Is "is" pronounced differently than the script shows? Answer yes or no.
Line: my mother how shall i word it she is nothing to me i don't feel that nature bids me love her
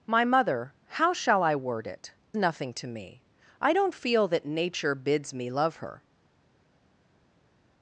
yes